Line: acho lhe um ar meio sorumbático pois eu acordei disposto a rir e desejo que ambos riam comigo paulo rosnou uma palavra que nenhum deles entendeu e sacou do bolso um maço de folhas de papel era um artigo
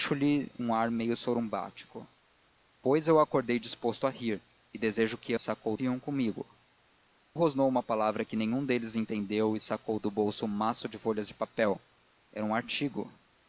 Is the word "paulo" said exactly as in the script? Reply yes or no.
no